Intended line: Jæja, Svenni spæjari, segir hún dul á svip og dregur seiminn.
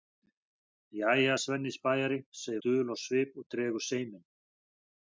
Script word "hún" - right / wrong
wrong